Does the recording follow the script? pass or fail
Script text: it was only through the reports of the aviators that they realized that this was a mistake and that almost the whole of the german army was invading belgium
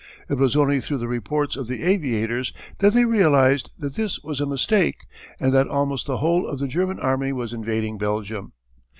pass